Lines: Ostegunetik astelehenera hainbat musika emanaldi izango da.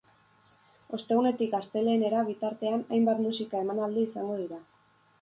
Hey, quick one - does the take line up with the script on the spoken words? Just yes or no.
no